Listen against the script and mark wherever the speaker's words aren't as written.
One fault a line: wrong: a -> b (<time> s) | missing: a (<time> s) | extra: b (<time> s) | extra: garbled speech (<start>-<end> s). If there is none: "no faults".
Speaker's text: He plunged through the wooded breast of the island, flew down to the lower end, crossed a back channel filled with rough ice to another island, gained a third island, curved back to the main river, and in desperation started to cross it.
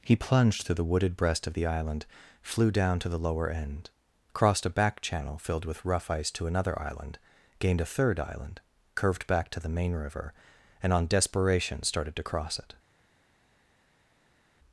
wrong: in -> on (10.9 s)